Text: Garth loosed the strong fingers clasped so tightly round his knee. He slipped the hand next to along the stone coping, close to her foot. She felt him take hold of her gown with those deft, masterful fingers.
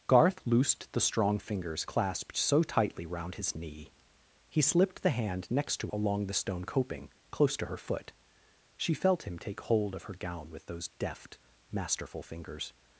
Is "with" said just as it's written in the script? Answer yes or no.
yes